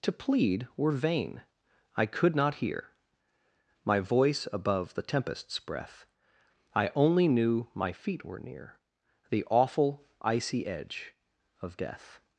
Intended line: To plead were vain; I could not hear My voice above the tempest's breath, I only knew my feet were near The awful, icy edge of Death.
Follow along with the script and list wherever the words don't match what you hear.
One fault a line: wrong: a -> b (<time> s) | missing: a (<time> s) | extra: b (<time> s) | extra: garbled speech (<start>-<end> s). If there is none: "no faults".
no faults